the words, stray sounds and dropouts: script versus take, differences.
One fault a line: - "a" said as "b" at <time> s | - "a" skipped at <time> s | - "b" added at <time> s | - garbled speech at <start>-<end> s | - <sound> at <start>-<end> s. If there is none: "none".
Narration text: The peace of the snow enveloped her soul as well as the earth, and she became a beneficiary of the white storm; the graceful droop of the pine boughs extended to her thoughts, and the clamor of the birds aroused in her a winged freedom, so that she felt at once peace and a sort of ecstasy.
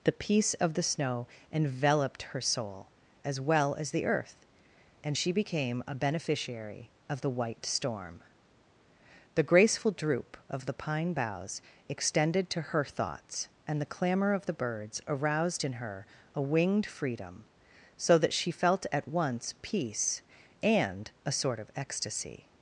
none